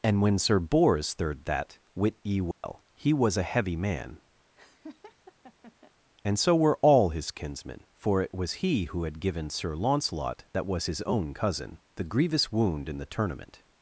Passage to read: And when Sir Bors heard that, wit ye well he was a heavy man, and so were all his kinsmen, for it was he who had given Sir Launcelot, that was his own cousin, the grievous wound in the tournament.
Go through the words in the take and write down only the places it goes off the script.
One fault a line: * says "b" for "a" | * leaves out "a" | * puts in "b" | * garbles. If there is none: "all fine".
* says "third" for "heard"